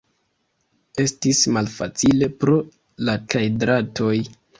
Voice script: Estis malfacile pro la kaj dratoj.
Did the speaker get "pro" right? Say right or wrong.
right